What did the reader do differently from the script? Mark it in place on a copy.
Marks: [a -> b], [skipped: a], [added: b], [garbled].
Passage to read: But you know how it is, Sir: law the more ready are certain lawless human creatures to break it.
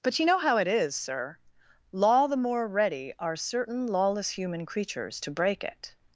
But you know how it is, Sir: law the more ready are certain lawless human creatures to break it.